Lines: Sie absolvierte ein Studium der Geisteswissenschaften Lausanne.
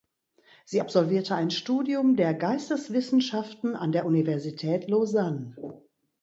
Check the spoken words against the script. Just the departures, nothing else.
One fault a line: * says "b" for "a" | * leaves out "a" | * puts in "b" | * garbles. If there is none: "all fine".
* puts in "an der Universität"